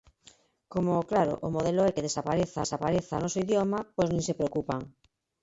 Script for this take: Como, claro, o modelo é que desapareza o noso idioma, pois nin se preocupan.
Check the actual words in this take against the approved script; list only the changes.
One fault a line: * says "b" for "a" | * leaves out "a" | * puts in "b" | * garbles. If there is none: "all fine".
* puts in "desapareza"